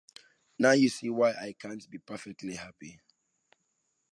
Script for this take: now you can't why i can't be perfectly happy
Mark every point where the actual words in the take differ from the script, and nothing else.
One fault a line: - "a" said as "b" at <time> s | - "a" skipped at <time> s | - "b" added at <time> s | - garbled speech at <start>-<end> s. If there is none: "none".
- "can't" said as "see" at 0.9 s